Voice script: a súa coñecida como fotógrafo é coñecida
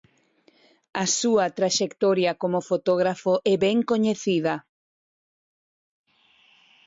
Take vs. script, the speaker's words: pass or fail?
fail